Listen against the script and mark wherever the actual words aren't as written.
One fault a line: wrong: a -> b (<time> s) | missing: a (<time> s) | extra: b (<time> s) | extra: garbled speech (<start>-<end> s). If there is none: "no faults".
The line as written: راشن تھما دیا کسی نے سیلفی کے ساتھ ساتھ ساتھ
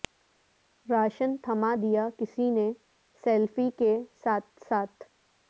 missing: ساتھ (5.0 s)